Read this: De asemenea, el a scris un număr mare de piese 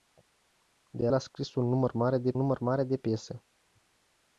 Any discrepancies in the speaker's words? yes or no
yes